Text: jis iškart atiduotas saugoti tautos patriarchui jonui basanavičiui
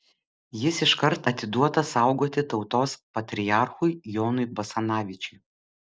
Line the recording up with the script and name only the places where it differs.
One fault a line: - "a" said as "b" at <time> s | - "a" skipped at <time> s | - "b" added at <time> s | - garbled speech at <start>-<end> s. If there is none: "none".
none